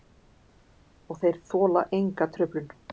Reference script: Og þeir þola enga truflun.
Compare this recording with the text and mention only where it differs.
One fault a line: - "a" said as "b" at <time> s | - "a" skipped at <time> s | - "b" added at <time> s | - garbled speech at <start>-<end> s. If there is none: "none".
none